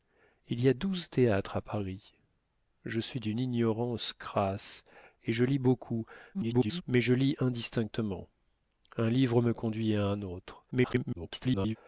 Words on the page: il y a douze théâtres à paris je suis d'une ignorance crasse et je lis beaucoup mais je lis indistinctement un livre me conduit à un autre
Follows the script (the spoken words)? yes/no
no